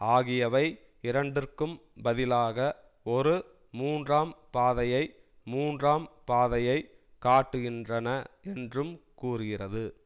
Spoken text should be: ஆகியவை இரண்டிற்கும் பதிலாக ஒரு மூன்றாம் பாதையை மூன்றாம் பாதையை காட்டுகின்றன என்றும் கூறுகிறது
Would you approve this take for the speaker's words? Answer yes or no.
yes